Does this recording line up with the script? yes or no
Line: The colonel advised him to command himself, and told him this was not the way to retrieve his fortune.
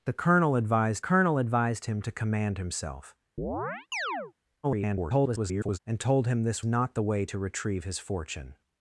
no